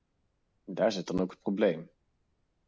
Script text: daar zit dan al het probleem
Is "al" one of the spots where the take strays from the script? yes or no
yes